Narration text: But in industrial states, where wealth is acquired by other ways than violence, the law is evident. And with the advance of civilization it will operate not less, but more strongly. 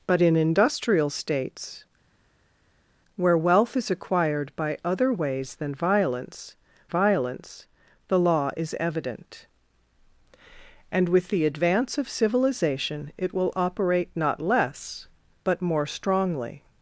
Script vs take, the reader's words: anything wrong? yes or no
yes